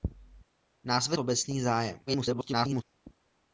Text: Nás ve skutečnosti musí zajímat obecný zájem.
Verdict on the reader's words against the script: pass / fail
fail